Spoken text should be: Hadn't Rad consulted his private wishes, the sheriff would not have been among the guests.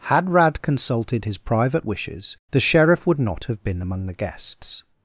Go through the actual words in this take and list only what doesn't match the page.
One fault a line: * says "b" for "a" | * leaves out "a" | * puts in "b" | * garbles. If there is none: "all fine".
* says "Had" for "Hadn't"